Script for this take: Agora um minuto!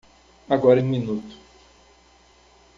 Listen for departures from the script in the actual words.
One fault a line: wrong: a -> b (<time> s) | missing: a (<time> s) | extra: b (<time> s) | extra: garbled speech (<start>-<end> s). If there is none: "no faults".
no faults